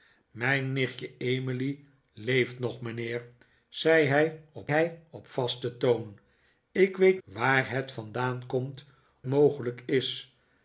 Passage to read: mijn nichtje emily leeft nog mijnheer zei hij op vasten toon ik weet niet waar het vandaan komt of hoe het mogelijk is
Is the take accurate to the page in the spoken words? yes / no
no